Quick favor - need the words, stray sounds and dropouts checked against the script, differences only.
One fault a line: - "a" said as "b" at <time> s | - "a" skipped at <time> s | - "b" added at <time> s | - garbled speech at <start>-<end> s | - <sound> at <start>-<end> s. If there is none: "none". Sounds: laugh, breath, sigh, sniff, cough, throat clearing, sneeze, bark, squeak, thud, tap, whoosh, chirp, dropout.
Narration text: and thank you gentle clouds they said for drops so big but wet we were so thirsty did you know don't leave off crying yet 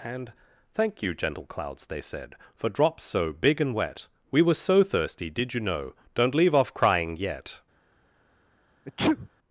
- "but" said as "and" at 3.6 s
- sneeze at 8.9-9.3 s